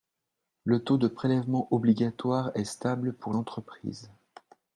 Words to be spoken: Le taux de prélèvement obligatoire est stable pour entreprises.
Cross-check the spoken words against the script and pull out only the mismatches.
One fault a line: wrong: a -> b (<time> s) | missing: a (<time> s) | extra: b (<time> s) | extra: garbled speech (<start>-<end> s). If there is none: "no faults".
no faults